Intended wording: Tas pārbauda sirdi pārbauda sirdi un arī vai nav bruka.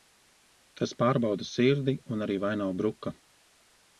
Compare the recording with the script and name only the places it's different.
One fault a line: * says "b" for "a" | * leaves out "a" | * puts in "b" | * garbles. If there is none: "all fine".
* leaves out "pārbauda sirdi"